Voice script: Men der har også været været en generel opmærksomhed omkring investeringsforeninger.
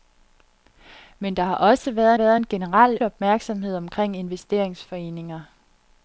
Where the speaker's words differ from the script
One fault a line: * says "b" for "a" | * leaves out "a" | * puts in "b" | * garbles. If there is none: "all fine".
all fine